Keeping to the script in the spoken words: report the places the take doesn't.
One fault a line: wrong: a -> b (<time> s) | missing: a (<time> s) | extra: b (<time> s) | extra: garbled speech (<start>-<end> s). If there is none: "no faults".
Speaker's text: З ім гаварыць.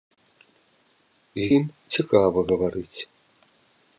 extra: цікава (2.0 s)